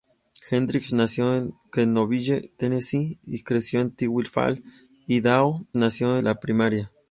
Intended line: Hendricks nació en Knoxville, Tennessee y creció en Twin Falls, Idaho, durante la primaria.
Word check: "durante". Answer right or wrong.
wrong